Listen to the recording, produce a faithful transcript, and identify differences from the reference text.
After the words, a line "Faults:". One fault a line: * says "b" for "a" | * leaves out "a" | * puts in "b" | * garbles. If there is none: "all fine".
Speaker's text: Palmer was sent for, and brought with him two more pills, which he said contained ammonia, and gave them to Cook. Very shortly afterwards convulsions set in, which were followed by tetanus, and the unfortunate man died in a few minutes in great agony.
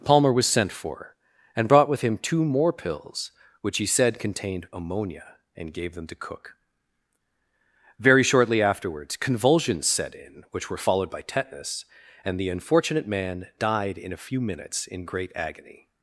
Palmer was sent for, and brought with him two more pills, which he said contained ammonia, and gave them to Cook. Very shortly afterwards convulsions set in, which were followed by tetanus, and the unfortunate man died in a few minutes in great agony.
Faults:
all fine